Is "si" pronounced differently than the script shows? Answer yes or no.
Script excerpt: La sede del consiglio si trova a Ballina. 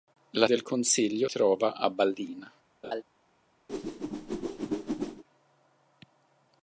yes